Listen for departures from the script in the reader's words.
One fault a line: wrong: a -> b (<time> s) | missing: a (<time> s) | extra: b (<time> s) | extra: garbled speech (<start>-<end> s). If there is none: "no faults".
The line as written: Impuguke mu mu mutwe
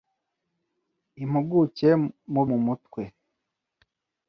no faults